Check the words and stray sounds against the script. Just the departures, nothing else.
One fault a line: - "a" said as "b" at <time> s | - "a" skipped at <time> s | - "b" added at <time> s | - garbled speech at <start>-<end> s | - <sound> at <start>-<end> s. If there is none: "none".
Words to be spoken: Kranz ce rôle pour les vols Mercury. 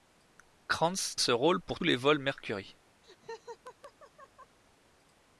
- laugh at 3.0-4.6 s